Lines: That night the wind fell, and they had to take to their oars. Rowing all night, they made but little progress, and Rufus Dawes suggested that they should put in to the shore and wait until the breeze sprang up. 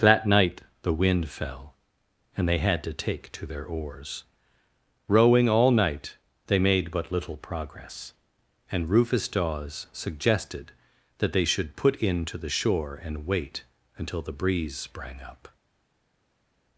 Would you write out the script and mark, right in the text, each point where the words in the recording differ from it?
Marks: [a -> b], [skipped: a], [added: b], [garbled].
That night the wind fell, and they had to take to their oars. Rowing all night, they made but little progress, and Rufus Dawes suggested that they should put in to the shore and wait until the breeze sprang up.